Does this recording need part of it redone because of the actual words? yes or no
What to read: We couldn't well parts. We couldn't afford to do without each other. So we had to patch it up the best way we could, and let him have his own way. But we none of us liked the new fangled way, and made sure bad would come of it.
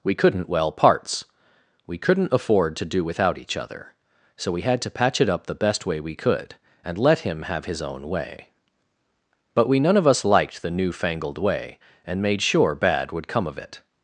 no